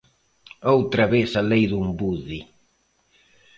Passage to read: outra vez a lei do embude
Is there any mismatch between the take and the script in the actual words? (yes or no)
no